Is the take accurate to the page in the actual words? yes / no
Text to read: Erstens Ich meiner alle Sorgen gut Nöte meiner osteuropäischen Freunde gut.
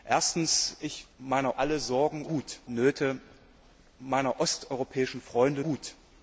yes